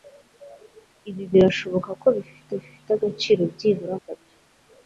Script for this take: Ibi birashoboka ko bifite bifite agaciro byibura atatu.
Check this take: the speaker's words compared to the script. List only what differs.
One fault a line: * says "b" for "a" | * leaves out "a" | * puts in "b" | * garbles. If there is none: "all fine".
all fine